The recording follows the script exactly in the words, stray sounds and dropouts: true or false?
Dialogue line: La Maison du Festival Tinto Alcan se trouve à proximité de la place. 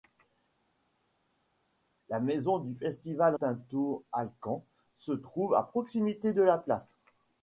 true